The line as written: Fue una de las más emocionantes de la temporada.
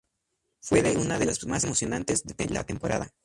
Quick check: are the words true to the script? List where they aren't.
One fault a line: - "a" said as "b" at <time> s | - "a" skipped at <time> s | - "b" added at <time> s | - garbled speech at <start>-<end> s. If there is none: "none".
none